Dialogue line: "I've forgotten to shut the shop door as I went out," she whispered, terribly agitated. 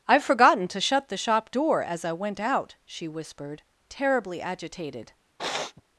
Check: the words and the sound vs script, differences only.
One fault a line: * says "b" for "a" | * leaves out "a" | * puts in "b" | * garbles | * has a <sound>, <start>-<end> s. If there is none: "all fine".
* has a sniff, 5.4-5.8 s